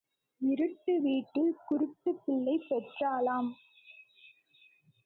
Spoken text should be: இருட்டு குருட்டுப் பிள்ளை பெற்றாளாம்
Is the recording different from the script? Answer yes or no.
yes